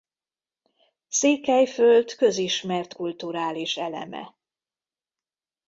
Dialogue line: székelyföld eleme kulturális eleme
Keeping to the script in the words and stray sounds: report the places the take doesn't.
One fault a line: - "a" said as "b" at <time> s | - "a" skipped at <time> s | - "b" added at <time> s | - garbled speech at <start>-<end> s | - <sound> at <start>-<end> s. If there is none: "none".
- "eleme" said as "közismert" at 2.1 s